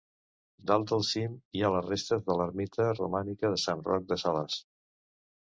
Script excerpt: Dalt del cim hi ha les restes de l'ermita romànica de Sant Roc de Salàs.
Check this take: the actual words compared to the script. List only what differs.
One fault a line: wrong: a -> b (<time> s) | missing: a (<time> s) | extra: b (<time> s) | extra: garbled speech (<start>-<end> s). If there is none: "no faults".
no faults